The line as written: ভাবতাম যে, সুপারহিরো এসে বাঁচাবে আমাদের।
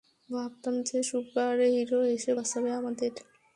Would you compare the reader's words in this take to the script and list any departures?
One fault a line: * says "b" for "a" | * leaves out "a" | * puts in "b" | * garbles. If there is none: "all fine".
all fine